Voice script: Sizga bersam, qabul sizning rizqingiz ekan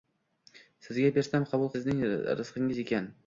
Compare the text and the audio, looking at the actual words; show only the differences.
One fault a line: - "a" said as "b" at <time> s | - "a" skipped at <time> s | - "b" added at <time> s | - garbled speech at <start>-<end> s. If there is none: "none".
none